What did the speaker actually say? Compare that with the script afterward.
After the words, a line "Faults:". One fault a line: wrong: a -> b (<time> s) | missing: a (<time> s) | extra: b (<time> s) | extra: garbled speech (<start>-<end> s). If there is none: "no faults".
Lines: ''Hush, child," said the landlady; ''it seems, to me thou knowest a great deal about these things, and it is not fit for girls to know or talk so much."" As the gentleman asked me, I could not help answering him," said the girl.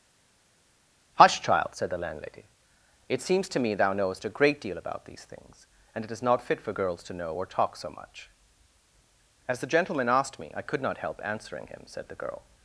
''Hush, child," said the landlady; ''it seems, to me thou knowest a great deal about these things, and it is not fit for girls to know or talk so much."" As the gentleman asked me, I could not help answering him," said the girl.
Faults:
no faults